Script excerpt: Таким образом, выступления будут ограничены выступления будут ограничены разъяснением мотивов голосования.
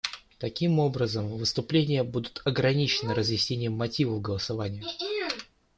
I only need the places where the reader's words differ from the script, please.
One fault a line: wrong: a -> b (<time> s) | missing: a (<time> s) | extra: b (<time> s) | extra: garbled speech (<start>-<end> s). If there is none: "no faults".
missing: выступления будут ограничены (3.1 s)